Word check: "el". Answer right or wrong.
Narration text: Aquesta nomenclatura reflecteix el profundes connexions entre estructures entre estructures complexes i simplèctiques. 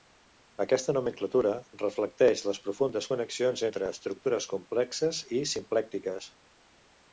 wrong